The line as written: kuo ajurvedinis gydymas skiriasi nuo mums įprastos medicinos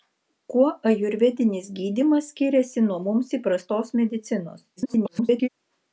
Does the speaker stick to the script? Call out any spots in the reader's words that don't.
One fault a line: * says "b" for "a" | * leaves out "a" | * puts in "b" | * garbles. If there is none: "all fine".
* garbles